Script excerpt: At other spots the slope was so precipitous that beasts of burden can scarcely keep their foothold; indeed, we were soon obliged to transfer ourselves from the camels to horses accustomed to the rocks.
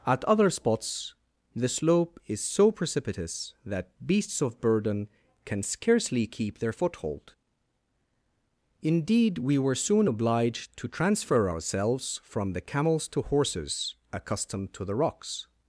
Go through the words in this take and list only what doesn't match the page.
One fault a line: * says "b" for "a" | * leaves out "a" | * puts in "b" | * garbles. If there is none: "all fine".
* says "is" for "was"